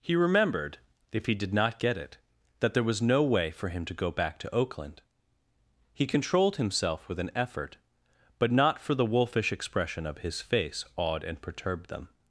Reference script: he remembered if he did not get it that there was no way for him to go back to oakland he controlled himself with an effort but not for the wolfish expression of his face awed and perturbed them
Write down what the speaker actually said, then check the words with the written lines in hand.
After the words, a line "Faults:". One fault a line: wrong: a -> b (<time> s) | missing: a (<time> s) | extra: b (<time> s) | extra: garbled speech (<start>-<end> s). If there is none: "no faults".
he remembered if he did not get it that there was no way for him to go back to oakland he controlled himself with an effort but not for the wolfish expression of his face awed and perturbed them
Faults:
no faults